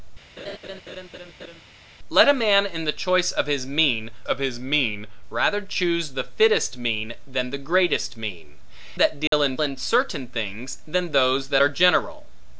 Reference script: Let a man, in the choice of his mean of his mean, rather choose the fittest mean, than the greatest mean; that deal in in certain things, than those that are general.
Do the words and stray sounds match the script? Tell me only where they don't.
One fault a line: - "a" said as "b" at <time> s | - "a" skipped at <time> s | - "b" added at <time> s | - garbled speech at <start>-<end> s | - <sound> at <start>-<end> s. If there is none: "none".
- laugh at 0.4-1.6 s
- dropout at 9.3-9.3 s